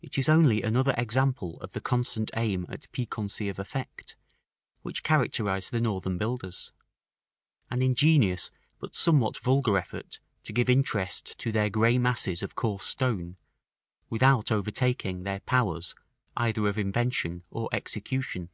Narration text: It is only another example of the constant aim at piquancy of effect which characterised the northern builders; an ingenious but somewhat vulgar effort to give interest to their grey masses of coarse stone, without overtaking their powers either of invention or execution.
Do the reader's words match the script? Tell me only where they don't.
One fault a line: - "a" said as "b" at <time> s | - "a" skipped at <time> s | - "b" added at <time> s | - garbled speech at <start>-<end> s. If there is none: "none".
none